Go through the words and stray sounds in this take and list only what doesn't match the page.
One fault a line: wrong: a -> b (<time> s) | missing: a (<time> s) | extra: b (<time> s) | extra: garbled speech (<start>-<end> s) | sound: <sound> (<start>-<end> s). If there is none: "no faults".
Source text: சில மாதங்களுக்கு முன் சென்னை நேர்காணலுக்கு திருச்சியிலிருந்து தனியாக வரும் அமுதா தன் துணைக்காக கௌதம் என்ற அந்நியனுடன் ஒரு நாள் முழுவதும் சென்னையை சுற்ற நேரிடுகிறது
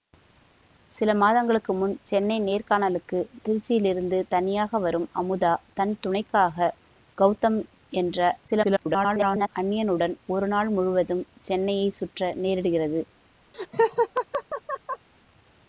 extra: garbled speech (8.5-9.5 s)
sound: laugh (13.5-15.1 s)